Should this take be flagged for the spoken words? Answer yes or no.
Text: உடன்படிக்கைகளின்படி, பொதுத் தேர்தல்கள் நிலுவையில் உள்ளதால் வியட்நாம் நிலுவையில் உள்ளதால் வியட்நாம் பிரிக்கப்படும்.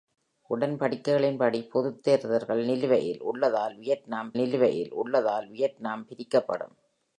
no